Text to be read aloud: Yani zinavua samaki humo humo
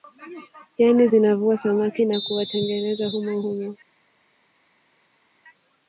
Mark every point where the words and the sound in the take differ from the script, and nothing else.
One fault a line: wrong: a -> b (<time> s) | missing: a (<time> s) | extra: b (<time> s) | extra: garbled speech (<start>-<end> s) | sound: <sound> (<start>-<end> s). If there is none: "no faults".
extra: na kuwatengeneza (2.1 s)